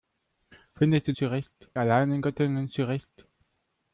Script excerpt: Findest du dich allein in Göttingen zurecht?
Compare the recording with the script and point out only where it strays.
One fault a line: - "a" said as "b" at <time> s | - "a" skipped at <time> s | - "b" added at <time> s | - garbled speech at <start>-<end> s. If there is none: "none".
- "dich" said as "zurecht" at 1.1 s